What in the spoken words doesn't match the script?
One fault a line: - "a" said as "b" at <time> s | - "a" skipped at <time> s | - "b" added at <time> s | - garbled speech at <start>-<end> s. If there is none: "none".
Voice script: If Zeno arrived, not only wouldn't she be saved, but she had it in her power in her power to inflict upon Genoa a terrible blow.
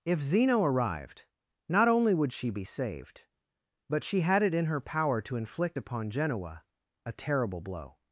- "wouldn't" said as "would" at 2.1 s
- "in her power" skipped at 5.2 s